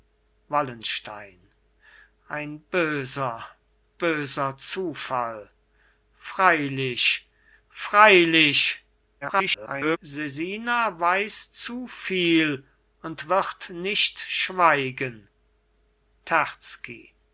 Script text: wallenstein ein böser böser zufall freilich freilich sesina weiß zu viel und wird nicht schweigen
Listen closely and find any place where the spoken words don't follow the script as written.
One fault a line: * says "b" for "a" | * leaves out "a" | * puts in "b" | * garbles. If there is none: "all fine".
* garbles